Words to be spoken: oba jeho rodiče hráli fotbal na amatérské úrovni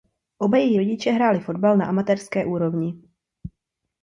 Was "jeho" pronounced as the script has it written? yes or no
no